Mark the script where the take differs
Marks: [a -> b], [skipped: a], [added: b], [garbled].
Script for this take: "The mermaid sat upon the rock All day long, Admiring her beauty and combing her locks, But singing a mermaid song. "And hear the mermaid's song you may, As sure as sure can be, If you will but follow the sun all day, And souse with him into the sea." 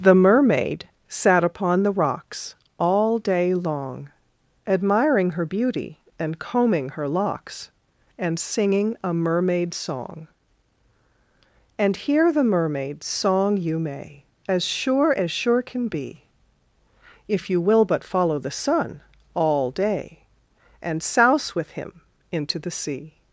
"The mermaid sat upon the [rock -> rocks] All day long, Admiring her beauty and combing her locks, [But -> And] singing a mermaid song. "And hear the mermaid's song you may, As sure as sure can be, If you will but follow the sun all day, And souse with him into the sea."